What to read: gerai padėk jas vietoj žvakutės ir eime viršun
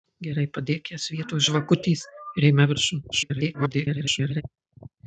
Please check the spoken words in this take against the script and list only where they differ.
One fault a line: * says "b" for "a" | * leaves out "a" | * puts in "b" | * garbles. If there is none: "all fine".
* garbles